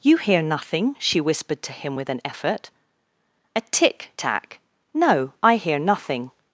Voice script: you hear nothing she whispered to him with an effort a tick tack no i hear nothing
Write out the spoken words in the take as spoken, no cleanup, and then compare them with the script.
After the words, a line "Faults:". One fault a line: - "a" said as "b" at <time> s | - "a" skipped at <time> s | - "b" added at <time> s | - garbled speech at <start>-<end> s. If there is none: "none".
you hear nothing she whispered to him with an effort a tick tack no i hear nothing
Faults:
none